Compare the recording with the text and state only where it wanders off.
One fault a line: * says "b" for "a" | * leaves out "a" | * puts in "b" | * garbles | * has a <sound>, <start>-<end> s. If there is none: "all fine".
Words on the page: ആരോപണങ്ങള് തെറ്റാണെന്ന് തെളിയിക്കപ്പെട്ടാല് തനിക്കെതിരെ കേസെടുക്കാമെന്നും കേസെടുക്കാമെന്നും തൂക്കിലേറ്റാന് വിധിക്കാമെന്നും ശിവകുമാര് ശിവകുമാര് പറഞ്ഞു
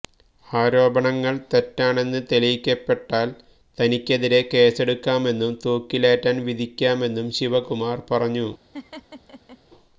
* leaves out "കേസെടുക്കാമെന്നും"
* leaves out "ശിവകുമാര്"
* has a laugh, 8.7-9.6 s